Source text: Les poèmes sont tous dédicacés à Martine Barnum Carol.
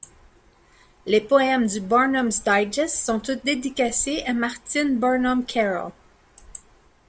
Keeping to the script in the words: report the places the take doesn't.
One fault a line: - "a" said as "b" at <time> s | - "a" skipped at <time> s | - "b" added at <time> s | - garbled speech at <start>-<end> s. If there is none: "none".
- "du Barnum's Digest" added at 1.7 s